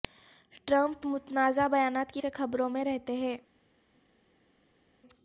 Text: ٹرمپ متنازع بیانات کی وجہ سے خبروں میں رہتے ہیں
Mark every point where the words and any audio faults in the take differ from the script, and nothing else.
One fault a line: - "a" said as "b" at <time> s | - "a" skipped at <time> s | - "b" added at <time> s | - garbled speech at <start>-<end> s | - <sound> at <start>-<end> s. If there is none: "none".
- "وجہ" skipped at 2.2 s